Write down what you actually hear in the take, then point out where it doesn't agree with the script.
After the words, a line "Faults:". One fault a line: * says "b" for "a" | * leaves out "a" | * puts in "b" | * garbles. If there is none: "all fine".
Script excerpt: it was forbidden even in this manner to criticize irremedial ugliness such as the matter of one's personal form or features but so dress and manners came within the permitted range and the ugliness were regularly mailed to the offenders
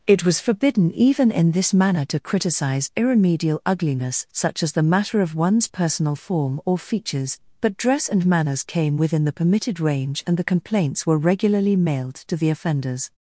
it was forbidden even in this manner to criticize irremedial ugliness such as the matter of one's personal form or features but dress and manners came within the permitted range and the complaints were regularly mailed to the offenders
Faults:
* leaves out "so"
* says "complaints" for "ugliness"